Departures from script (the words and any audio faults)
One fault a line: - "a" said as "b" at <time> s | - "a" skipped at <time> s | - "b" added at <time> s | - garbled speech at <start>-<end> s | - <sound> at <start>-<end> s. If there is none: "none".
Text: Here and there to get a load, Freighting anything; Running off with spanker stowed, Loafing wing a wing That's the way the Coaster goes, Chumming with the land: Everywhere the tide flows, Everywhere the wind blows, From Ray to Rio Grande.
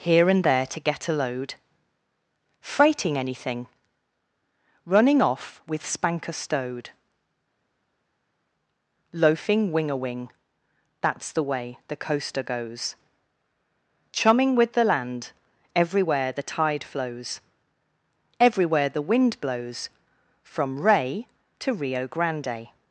none